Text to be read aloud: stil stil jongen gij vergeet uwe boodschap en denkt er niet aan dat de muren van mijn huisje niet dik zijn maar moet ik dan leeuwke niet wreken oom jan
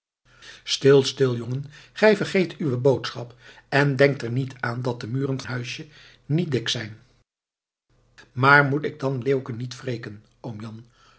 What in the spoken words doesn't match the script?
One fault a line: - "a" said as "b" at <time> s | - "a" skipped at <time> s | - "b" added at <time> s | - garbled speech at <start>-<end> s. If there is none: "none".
- "van mijn" skipped at 5.4 s